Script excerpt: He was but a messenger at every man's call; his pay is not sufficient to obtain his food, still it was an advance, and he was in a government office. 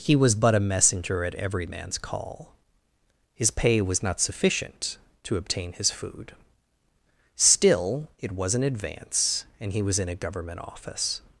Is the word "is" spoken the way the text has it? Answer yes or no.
no